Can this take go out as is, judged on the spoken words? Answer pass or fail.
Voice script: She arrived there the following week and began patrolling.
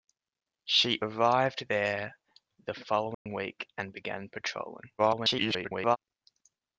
fail